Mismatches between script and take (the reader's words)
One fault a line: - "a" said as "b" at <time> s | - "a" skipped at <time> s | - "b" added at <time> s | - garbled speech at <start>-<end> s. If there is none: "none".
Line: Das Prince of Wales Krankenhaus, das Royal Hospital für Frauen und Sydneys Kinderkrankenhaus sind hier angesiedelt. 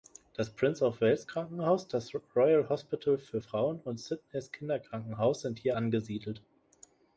none